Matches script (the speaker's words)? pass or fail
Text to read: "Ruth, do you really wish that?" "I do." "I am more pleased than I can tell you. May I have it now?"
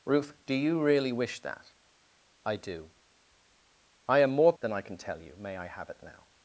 fail